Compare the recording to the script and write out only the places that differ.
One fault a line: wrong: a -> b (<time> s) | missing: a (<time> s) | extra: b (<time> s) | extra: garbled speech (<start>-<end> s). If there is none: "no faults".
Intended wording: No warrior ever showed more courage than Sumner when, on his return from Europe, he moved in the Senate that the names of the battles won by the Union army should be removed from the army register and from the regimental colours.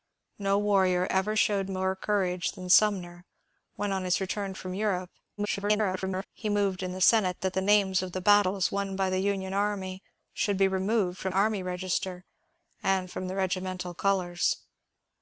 extra: garbled speech (5.4-6.3 s)
missing: the (11.3 s)